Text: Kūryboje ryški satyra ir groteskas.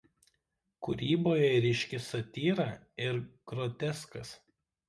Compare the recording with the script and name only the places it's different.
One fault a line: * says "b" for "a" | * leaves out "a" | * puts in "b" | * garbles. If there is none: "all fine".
all fine